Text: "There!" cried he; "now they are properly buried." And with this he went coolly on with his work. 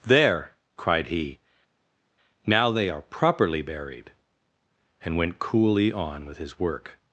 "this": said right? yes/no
no